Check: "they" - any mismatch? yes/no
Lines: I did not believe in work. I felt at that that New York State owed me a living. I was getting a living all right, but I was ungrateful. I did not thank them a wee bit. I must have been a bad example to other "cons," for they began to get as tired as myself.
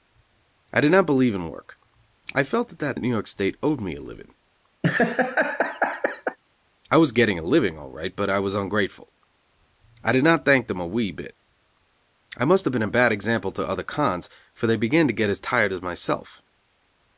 no